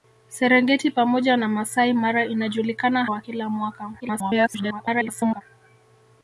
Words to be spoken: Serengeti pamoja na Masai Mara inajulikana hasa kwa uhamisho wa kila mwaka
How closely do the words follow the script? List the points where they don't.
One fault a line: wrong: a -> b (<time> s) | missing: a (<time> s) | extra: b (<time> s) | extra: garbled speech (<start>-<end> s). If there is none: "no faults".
missing: hasa kwa uhamisho (3.0 s)
extra: garbled speech (4.0-5.4 s)